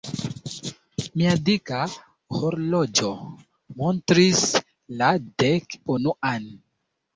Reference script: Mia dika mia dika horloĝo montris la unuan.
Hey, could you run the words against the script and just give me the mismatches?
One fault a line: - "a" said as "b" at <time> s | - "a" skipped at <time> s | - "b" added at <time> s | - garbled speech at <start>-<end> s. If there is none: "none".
- "mia dika" skipped at 1.8 s
- "dek" added at 5.5 s